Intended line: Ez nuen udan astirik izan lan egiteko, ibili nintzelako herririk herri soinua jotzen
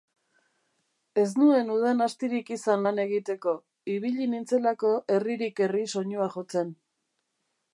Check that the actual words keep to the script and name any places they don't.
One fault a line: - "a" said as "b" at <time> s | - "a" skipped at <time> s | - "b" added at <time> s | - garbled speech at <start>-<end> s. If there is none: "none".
none